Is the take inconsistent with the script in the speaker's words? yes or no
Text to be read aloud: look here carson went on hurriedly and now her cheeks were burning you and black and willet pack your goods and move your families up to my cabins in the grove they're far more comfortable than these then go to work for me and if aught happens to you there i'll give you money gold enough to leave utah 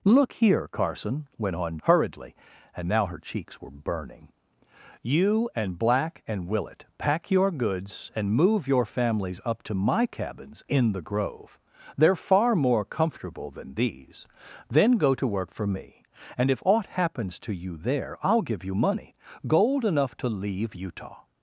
no